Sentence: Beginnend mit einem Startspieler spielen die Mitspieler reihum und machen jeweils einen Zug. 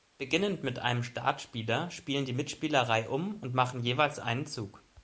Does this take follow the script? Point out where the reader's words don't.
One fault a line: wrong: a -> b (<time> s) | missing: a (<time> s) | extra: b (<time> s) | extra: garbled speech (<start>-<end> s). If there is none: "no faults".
no faults